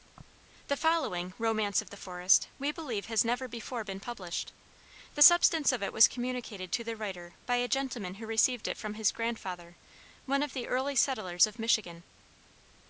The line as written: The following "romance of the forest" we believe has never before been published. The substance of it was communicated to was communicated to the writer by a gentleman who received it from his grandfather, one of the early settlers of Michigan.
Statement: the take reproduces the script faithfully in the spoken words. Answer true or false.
false